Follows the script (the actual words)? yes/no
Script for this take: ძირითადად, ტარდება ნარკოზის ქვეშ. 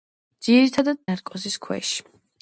no